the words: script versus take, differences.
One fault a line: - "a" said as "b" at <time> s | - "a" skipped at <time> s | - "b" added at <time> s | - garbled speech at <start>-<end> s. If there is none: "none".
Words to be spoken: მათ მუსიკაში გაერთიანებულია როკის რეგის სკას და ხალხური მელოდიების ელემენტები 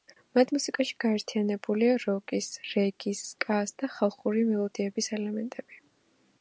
none